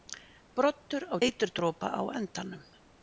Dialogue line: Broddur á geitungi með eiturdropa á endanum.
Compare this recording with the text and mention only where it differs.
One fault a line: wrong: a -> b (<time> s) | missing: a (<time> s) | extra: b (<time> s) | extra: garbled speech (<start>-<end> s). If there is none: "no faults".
missing: geitungi með (1.2 s)